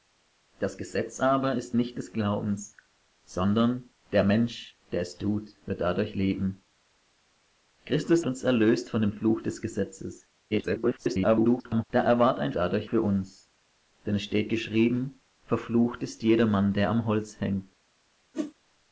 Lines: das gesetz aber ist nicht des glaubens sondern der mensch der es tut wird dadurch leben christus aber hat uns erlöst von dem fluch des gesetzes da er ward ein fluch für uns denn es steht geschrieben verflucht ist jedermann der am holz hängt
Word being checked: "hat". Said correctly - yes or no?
no